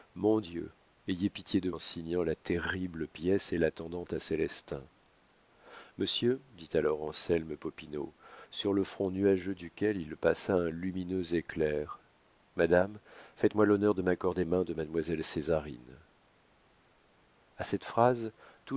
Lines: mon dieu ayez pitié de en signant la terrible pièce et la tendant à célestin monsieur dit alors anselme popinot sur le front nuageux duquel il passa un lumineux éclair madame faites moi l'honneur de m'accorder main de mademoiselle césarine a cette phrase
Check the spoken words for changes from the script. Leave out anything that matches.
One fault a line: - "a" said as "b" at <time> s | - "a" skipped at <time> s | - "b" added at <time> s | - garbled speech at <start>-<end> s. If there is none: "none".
none